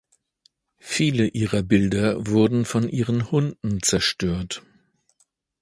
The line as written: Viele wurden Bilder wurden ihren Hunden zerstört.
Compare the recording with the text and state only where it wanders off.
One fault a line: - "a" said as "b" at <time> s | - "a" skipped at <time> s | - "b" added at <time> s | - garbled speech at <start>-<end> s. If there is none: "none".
- "wurden" said as "ihrer" at 1.3 s
- "von" added at 2.6 s